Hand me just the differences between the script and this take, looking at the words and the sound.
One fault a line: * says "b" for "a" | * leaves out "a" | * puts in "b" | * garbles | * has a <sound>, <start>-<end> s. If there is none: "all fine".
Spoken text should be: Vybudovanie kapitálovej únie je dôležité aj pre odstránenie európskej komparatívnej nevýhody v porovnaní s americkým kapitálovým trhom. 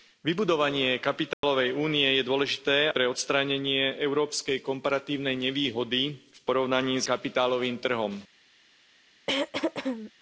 * has a dropout, 1.3-1.4 s
* leaves out "aj"
* leaves out "americkým"
* has a throat clearing, 9.3-10.1 s